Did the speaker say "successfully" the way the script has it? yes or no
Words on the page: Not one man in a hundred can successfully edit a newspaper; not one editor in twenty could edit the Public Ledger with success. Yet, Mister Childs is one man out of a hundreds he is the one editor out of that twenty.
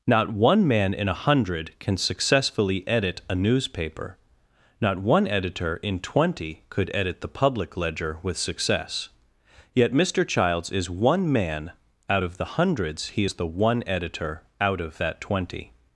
yes